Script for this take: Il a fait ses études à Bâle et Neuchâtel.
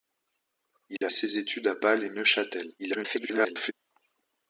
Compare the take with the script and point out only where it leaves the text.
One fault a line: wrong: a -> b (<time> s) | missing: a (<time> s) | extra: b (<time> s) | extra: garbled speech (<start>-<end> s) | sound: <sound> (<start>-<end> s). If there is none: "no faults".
sound: dropout (1.0-1.0 s)
missing: fait (1.1 s)
extra: garbled speech (2.8-3.7 s)